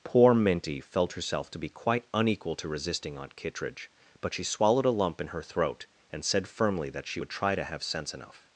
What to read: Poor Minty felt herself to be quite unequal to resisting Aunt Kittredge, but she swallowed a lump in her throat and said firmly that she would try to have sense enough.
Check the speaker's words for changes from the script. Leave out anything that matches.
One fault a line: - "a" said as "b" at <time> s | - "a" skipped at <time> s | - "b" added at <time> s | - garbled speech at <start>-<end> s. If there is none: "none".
none